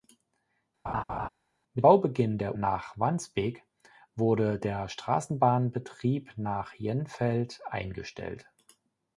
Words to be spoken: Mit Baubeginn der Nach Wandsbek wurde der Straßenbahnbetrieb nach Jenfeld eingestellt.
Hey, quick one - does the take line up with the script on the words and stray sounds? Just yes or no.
no